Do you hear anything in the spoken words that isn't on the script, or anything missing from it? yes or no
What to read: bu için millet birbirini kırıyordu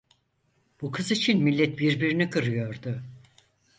yes